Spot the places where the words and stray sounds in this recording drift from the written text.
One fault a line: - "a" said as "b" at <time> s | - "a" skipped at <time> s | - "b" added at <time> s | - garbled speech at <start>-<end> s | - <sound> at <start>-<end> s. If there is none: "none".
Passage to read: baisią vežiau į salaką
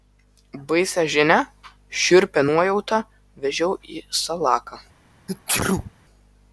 - "žinią šiurpią nuojautą" added at 1.1 s
- sneeze at 5.3-5.9 s